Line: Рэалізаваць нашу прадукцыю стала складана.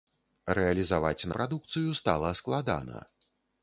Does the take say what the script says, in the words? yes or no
no